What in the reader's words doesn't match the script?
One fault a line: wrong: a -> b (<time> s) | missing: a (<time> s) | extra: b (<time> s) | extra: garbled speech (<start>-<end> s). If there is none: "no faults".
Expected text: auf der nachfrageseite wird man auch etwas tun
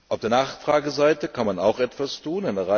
wrong: wird -> kann (1.3 s)